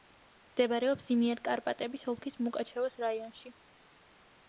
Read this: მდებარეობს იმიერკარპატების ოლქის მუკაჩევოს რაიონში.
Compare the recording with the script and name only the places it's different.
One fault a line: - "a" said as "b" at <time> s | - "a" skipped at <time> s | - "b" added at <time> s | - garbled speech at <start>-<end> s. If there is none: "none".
none